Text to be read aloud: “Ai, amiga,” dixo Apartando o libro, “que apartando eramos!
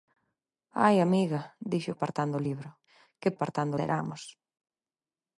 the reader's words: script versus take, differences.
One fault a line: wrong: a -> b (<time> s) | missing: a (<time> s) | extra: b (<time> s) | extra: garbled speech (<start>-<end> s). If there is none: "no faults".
no faults